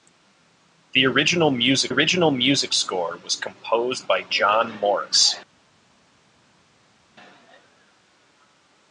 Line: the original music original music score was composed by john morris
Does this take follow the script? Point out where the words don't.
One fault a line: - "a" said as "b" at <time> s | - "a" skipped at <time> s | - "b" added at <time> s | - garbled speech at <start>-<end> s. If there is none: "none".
none